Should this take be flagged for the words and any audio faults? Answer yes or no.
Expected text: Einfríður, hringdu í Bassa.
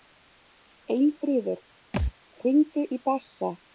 yes